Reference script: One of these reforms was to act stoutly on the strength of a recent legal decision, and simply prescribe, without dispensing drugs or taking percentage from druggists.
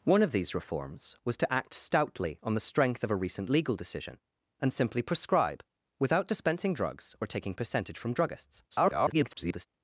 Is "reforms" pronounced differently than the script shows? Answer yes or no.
no